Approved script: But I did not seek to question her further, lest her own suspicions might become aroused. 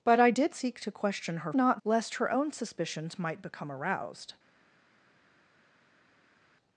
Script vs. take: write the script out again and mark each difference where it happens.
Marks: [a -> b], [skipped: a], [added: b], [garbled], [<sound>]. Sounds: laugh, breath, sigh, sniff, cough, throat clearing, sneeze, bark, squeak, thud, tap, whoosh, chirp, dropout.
But I did [skipped: not] seek to question her [further, -> not] lest her own suspicions might become aroused.